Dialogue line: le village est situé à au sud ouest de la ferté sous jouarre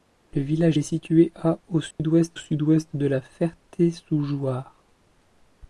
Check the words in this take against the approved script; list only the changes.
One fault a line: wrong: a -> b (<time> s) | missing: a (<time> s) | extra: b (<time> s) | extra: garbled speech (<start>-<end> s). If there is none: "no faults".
extra: sud ouest (2.3 s)